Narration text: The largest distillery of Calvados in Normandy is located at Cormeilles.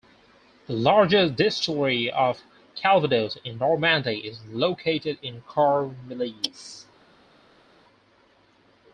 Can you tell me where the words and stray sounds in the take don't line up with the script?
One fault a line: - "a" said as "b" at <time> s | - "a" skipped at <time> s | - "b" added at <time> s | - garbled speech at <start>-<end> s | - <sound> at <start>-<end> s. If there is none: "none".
- "at" said as "in" at 5.2 s